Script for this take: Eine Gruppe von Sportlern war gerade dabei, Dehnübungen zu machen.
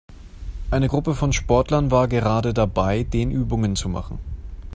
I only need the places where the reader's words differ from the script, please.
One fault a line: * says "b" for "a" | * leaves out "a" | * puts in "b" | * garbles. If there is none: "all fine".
all fine